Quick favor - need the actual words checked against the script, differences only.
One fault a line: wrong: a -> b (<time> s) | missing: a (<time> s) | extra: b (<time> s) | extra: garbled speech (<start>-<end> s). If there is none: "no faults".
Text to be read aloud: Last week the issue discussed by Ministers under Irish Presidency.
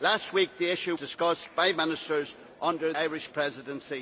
no faults